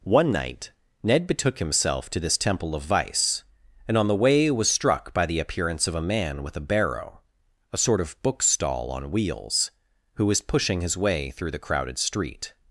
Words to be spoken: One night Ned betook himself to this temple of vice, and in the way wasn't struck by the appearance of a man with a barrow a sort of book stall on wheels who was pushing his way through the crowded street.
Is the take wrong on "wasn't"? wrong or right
wrong